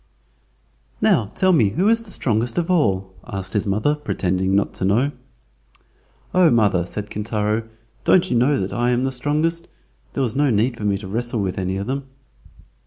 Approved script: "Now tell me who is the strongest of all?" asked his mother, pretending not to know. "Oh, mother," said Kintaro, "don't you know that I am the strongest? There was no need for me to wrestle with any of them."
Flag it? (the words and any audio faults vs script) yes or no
no